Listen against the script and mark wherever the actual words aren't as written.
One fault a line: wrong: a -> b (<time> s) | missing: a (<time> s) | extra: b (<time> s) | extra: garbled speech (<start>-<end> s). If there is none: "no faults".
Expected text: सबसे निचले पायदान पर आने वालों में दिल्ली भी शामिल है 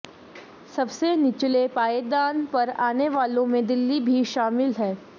no faults